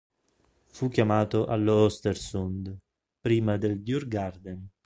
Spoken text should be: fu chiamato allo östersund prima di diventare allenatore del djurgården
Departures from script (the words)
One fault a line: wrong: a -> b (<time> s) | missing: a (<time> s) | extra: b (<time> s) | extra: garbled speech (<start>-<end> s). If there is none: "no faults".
missing: di diventare allenatore (3.6 s)